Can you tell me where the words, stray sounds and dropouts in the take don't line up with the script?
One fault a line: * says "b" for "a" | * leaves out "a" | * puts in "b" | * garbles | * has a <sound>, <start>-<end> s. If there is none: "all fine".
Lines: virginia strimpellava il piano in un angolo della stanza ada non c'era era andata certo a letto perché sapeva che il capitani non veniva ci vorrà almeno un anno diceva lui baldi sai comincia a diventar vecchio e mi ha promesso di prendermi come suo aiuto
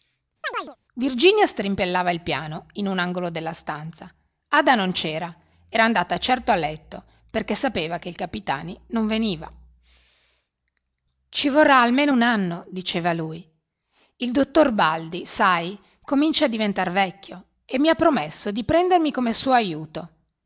* has a chirp, 0.4-0.8 s
* puts in "il dottor"